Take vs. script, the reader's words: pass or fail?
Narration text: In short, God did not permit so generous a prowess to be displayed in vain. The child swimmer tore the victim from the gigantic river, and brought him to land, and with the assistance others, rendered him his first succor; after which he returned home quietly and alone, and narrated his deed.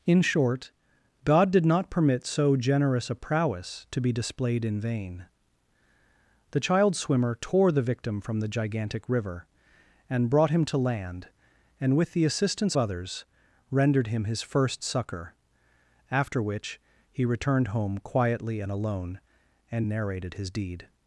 pass